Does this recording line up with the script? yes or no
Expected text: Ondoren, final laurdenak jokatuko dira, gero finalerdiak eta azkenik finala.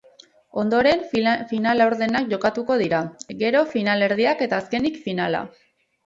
yes